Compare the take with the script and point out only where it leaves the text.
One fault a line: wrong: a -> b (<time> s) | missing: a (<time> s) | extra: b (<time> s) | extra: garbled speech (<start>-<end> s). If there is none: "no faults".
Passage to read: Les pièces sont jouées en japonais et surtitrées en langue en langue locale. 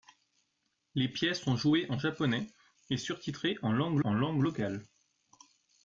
no faults